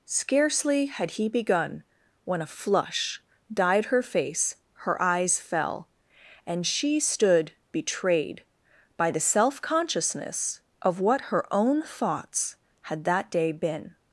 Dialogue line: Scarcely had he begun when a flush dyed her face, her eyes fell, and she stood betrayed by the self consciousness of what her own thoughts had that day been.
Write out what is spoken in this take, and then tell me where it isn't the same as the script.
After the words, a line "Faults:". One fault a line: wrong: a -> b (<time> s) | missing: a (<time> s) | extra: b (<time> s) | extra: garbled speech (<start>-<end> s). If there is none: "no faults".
Scarcely had he begun when a flush dyed her face, her eyes fell, and she stood betrayed by the self consciousness of what her own thoughts had that day been.
Faults:
no faults